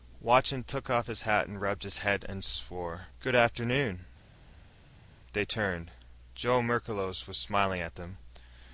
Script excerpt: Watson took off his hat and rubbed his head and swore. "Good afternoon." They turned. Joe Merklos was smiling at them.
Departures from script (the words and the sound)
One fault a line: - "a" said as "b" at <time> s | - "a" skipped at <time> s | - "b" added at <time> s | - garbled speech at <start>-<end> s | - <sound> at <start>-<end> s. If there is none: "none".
none